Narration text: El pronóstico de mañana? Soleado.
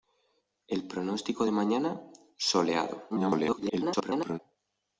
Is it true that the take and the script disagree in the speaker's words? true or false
true